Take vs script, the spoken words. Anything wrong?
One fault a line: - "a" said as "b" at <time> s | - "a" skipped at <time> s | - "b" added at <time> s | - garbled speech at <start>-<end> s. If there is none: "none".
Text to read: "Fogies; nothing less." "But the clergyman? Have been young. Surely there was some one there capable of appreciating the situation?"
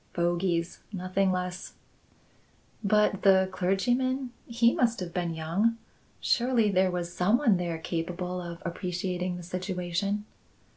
- "He must" added at 4.5 s